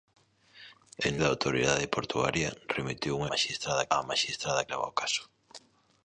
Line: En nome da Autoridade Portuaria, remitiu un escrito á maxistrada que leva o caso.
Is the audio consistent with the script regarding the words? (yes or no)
no